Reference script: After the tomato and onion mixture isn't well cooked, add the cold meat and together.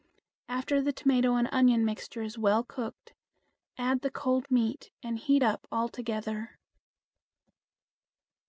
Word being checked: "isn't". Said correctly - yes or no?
no